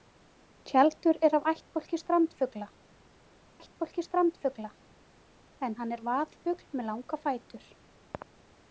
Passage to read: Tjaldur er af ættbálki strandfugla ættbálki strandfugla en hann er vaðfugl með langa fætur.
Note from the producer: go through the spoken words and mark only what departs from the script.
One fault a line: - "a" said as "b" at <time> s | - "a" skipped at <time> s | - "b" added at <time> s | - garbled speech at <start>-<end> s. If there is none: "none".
none